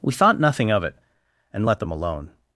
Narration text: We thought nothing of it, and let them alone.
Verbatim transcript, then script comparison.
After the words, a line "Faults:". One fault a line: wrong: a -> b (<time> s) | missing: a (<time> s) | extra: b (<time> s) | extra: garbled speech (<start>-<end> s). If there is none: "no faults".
We thought nothing of it, and let them alone.
Faults:
no faults